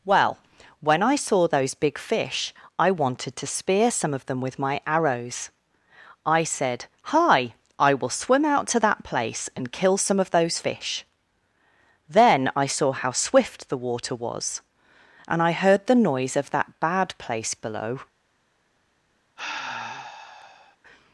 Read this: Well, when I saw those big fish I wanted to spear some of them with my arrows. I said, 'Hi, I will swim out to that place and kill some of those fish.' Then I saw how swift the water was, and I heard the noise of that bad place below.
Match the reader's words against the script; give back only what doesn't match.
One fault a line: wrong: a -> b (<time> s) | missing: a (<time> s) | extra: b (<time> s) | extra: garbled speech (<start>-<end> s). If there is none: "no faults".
no faults